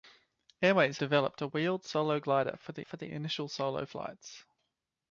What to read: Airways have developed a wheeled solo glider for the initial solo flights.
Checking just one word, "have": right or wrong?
wrong